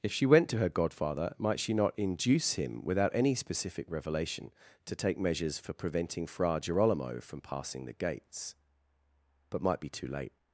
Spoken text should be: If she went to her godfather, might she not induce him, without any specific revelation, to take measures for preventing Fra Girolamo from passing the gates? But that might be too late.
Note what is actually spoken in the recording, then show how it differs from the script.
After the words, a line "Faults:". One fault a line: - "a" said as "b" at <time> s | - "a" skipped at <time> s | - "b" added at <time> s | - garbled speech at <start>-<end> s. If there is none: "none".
If she went to her godfather, might she not induce him, without any specific revelation, to take measures for preventing Fra Girolamo from passing the gates? But might be too late.
Faults:
- "that" skipped at 9.6 s